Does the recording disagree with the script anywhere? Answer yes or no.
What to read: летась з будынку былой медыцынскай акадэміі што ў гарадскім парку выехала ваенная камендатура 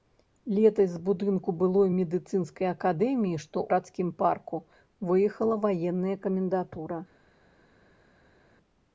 yes